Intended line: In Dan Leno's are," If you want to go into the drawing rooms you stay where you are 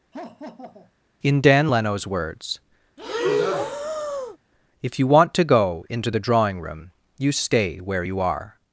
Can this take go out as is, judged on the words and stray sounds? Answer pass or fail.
fail